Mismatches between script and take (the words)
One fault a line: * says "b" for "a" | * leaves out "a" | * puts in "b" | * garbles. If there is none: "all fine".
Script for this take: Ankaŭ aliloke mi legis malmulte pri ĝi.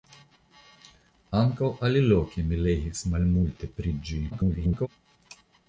* garbles